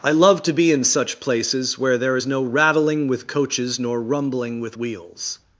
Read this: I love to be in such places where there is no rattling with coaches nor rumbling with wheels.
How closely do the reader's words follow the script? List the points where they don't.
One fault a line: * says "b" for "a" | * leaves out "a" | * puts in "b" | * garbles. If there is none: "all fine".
all fine